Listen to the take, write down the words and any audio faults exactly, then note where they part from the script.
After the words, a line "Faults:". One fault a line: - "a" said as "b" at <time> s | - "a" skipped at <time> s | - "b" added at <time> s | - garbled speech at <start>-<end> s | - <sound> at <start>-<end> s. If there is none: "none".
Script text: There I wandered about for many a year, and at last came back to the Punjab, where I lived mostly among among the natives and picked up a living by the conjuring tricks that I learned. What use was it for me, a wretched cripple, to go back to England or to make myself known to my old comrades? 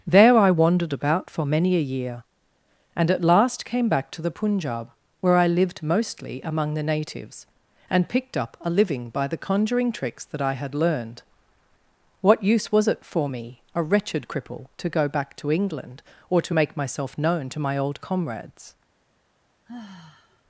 There I wandered about for many a year, and at last came back to the Punjab, where I lived mostly among the natives and picked up a living by the conjuring tricks that I had learned. What use was it for me, a wretched cripple, to go back to England or to make myself known to my old comrades?
Faults:
- "among" skipped at 6.7 s
- "had" added at 10.5 s
- sigh at 19.7-20.4 s